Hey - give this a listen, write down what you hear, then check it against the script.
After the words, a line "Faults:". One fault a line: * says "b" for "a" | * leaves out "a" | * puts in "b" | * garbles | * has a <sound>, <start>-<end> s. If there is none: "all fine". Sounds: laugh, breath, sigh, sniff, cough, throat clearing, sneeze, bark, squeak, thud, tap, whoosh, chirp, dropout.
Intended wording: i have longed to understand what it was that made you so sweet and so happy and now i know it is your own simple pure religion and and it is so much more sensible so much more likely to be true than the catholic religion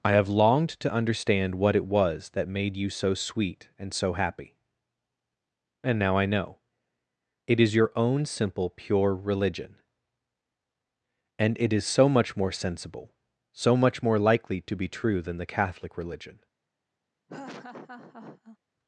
i have longed to understand what it was that made you so sweet and so happy and now i know it is your own simple pure religion and it is so much more sensible so much more likely to be true than the catholic religion
Faults:
* leaves out "and"
* has a laugh, 17.3-18.6 s